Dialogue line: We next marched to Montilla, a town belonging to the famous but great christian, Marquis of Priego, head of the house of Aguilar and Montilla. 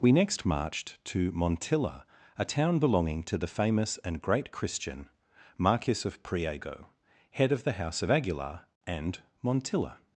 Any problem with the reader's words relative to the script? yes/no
yes